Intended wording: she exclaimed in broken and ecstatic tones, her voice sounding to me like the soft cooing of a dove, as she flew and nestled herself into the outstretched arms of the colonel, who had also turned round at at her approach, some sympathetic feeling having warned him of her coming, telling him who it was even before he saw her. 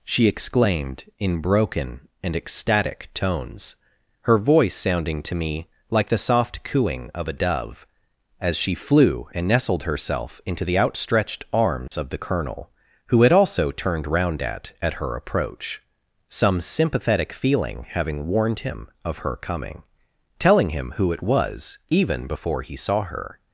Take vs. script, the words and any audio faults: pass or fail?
fail